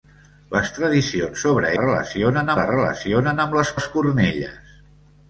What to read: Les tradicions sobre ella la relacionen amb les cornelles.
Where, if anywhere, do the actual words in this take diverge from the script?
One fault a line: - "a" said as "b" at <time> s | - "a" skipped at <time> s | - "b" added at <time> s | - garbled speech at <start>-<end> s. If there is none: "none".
- "ella" said as "relacionen" at 1.8 s
- "les" added at 3.8 s